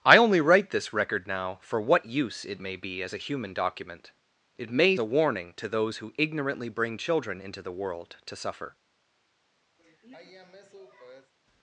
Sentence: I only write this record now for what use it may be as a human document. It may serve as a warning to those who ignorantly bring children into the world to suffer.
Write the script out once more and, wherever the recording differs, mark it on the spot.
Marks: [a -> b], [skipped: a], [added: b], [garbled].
I only write this record now for what use it may be as a human document. It may [skipped: serve as] a warning to those who ignorantly bring children into the world to suffer.